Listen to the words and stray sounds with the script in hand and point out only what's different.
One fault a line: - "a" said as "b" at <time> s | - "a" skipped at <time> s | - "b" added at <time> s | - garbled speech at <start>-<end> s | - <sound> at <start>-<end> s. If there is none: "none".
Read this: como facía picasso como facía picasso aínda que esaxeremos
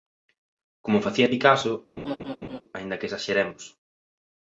- "como facía picasso" skipped at 1.7 s
- laugh at 2.0-2.6 s